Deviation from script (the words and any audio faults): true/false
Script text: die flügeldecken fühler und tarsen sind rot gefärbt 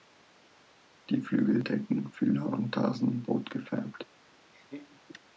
true